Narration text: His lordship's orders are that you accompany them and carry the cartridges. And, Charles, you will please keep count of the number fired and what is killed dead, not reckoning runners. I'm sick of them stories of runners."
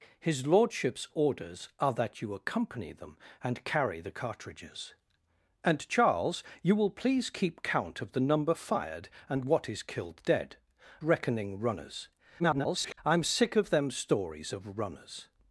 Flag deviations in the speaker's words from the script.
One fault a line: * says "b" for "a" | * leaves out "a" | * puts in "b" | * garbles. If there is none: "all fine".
* leaves out "not"
* garbles